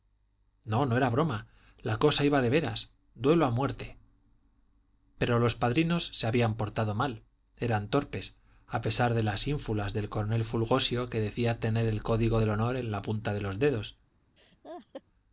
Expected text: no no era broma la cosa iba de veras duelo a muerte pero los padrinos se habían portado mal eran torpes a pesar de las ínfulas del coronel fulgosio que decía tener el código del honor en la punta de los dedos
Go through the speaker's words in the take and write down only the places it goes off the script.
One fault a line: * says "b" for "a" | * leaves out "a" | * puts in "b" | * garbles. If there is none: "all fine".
all fine